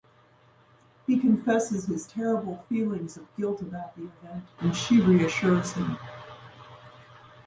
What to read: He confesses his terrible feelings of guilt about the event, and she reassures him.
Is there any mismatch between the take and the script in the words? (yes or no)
no